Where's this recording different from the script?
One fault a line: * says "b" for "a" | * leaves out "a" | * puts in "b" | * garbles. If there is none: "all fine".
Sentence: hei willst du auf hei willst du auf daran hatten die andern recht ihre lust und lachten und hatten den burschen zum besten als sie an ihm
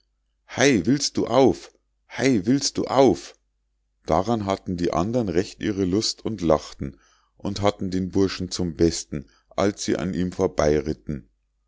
all fine